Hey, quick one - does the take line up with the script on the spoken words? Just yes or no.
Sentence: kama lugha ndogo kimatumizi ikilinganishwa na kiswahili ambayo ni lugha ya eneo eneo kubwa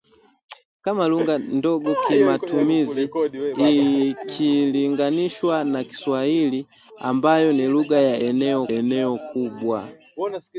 yes